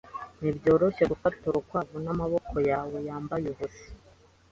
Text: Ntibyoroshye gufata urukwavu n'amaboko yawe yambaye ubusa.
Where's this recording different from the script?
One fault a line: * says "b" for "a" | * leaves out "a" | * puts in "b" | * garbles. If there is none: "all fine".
all fine